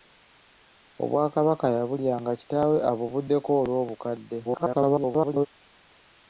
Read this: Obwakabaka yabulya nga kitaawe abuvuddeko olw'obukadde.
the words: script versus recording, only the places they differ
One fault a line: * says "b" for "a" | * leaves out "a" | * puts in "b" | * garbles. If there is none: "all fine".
* garbles